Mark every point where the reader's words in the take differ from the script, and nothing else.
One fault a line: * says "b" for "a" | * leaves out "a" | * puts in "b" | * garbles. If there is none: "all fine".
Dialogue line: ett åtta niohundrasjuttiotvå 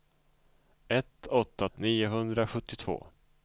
all fine